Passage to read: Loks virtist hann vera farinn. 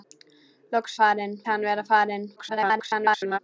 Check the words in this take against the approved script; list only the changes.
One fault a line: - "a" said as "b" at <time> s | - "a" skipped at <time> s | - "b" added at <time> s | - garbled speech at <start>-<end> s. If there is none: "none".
- "virtist" said as "farinn" at 1.0 s
- garbled speech at 2.4-3.4 s